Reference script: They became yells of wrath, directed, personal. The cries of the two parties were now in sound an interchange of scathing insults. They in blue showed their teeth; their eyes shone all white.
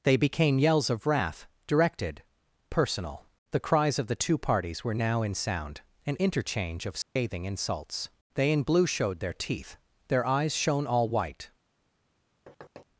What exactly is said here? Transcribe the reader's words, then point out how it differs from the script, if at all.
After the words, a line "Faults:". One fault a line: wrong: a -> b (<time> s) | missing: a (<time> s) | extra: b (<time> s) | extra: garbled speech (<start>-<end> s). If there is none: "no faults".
They became yells of wrath, directed, personal. The cries of the two parties were now in sound an interchange of scathing insults. They in blue showed their teeth; their eyes shone all white.
Faults:
no faults